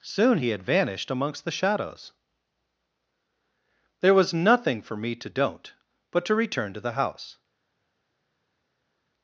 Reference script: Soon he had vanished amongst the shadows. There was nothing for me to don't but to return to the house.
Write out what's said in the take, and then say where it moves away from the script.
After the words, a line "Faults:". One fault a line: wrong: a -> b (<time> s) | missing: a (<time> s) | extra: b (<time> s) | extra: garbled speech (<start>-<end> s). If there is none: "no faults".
Soon he had vanished amongst the shadows. There was nothing for me to don't but to return to the house.
Faults:
no faults